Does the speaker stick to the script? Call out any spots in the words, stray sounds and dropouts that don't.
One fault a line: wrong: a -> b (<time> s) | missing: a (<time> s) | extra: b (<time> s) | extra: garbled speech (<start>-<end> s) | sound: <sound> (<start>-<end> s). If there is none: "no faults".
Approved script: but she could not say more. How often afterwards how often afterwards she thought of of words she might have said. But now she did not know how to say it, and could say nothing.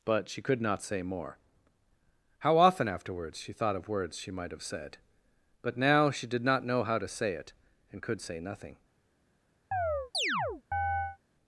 missing: how often afterwards (3.4 s)
missing: of (3.9 s)
sound: chirp (9.7-11.2 s)